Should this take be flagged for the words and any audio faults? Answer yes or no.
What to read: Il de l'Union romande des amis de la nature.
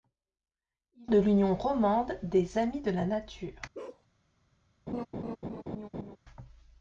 yes